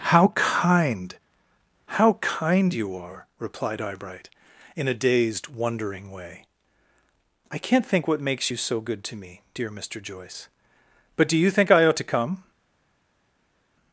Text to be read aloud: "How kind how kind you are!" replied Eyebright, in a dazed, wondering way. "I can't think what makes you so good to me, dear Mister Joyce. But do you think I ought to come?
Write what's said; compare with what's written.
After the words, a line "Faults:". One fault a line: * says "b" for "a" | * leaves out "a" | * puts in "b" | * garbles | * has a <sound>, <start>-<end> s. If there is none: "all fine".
"How kind how kind you are!" replied Eyebright, in a dazed, wondering way. "I can't think what makes you so good to me, dear Mister Joyce. But do you think I ought to come?
Faults:
all fine